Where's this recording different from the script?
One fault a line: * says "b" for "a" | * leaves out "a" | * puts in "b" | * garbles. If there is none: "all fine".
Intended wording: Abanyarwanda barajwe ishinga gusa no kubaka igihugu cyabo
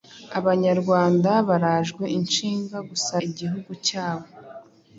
* leaves out "no kubaka"